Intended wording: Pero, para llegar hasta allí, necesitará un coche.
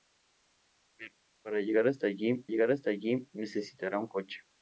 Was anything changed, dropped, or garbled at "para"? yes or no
no